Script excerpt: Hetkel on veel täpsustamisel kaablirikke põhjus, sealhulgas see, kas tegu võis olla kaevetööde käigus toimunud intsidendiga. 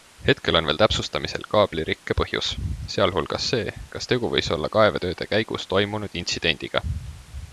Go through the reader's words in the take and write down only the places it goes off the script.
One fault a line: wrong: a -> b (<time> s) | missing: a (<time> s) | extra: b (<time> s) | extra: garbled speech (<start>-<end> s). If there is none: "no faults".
no faults